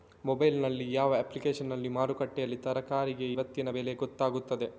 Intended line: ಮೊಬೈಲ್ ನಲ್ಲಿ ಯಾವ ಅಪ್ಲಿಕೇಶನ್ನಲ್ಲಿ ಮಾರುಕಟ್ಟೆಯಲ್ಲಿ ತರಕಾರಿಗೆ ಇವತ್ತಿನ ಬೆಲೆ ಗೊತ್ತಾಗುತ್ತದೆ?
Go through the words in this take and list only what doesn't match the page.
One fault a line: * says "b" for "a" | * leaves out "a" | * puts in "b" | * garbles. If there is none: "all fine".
all fine